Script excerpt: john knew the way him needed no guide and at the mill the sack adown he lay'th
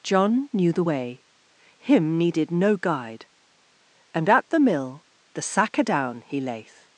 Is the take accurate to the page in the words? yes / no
yes